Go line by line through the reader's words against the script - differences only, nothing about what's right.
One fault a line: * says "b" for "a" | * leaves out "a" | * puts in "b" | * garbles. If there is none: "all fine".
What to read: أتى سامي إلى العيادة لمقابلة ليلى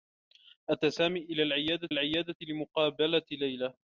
* puts in "العيادة"